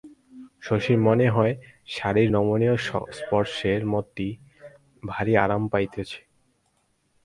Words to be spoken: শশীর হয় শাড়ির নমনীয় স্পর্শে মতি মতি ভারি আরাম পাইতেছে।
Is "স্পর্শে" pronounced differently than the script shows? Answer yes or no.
no